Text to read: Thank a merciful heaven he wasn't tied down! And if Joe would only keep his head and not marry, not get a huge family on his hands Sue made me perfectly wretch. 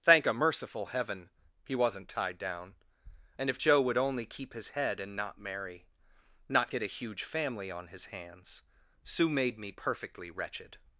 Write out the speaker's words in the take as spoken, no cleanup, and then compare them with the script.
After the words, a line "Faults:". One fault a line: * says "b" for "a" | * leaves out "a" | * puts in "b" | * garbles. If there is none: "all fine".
Thank a merciful heaven he wasn't tied down! And if Joe would only keep his head and not marry, not get a huge family on his hands Sue made me perfectly wretched.
Faults:
* says "wretched" for "wretch"